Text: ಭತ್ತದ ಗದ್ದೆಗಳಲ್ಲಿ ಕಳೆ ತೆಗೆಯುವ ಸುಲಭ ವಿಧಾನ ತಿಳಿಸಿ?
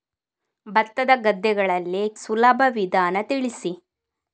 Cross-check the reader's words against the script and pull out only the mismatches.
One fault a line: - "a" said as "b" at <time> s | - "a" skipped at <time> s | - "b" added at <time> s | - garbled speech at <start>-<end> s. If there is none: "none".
- "ಕಳೆ ತೆಗೆಯುವ" skipped at 2.1 s